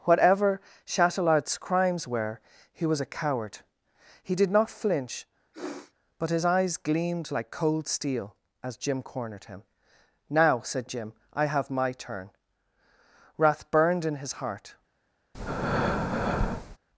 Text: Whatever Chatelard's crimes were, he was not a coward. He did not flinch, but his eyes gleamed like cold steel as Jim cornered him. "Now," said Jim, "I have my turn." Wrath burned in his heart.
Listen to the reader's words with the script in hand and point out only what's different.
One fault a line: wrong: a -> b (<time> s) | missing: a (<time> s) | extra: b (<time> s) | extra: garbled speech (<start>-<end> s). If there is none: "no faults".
missing: not (3.0 s)